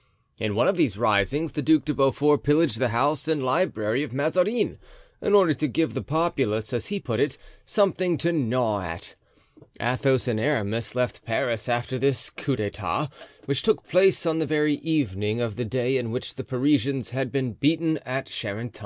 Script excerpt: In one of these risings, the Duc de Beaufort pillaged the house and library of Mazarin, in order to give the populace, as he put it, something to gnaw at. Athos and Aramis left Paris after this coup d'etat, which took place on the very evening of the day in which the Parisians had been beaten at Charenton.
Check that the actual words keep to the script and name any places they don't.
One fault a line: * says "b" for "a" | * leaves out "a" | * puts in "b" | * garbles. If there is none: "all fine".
all fine